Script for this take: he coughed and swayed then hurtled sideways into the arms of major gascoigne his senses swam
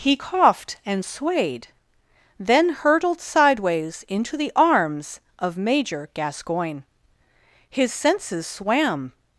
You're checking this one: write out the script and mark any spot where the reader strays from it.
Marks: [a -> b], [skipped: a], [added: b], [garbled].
he coughed and swayed then hurtled sideways into the arms of major gascoigne his senses swam